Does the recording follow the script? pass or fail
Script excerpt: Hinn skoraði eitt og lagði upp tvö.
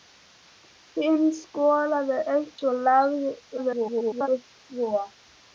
fail